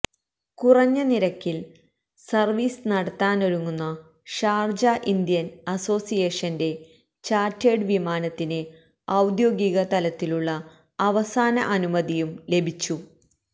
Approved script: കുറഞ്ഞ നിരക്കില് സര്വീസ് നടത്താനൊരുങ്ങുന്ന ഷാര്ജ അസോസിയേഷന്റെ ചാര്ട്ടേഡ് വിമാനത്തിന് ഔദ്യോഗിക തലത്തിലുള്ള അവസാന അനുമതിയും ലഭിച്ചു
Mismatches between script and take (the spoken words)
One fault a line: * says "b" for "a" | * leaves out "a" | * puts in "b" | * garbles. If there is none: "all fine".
* puts in "ഇന്ത്യന്"